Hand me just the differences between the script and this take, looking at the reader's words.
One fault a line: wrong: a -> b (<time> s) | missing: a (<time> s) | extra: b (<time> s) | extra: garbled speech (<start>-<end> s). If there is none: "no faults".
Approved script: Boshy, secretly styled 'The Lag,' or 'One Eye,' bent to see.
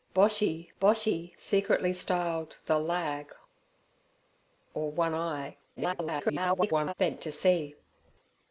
extra: boshy (0.8 s)
extra: garbled speech (5.8-6.9 s)